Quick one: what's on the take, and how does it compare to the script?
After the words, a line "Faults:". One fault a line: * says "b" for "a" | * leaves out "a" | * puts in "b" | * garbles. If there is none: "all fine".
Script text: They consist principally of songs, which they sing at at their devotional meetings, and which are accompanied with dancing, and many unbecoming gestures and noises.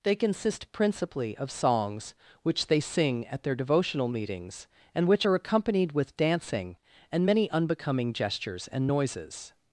They consist principally of songs, which they sing at their devotional meetings, and which are accompanied with dancing, and many unbecoming gestures and noises.
Faults:
* leaves out "at"